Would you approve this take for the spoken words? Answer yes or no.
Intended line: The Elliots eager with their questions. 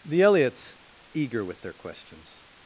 yes